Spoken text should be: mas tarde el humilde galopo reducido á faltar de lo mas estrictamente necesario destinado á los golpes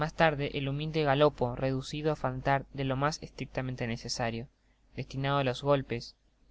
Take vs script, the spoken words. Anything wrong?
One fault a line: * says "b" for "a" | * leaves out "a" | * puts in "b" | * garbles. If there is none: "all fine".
all fine